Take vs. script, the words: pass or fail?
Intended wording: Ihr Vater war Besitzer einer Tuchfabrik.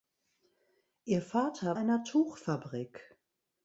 fail